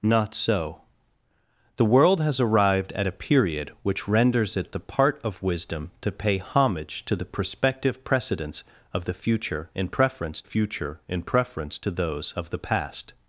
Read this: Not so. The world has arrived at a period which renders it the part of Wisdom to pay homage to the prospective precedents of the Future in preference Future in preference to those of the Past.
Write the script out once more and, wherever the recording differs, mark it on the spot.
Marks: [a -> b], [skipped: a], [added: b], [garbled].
Not so. The world has arrived at a period which renders it the part of Wisdom to pay homage to the prospective precedents of the Future in preference Future in preference to those of the Past.